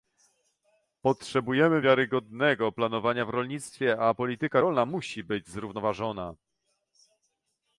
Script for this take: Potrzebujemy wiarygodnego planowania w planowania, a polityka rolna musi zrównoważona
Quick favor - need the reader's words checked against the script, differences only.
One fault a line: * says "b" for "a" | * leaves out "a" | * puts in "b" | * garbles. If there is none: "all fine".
* says "rolnictwie" for "planowania"
* puts in "być"